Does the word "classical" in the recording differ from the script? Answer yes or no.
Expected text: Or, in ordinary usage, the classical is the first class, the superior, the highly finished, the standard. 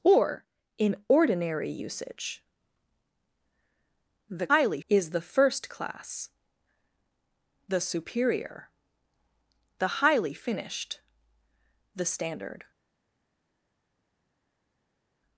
yes